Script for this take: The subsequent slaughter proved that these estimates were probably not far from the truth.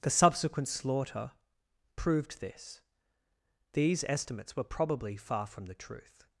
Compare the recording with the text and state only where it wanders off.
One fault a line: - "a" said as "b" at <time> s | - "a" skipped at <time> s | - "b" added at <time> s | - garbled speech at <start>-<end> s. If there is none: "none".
- "that" said as "this" at 2.4 s
- "not" skipped at 5.2 s